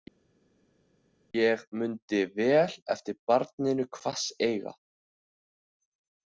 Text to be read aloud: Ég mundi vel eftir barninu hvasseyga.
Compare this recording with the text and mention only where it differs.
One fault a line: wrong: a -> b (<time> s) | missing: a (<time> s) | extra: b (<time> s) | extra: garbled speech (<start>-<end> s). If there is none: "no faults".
no faults